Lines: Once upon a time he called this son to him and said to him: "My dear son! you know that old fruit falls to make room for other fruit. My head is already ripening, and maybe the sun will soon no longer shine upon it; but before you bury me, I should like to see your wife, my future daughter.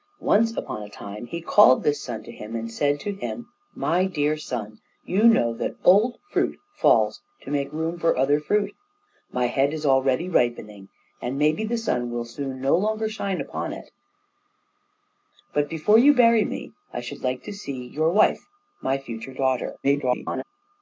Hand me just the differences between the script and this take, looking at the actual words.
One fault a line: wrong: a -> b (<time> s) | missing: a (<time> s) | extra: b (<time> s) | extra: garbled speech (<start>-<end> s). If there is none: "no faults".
extra: garbled speech (19.8-20.4 s)